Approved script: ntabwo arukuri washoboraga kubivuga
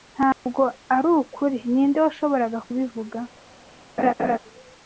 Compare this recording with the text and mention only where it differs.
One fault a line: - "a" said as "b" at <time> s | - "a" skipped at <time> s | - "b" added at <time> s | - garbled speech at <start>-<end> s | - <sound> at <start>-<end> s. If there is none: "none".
- dropout at 0.3-0.5 s
- "ninde" added at 1.7 s
- laugh at 4.0-4.4 s